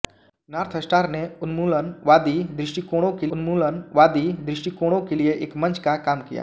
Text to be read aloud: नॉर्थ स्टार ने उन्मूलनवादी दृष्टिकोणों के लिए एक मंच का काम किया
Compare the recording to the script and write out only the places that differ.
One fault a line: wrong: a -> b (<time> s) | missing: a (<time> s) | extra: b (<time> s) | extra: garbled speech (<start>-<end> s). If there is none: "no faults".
extra: उन्मूलनवादी दृष्टिकोणों के (3.3 s)